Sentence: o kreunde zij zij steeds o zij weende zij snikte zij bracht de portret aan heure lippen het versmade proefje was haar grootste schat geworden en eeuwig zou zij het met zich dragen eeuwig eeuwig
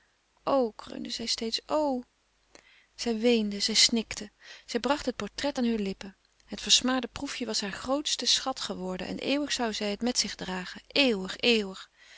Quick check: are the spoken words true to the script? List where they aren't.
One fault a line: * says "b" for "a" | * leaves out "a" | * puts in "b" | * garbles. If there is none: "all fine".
* leaves out "zij"
* says "het" for "de"